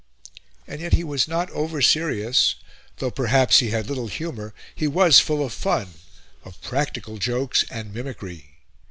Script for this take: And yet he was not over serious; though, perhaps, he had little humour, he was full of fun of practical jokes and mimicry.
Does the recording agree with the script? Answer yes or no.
yes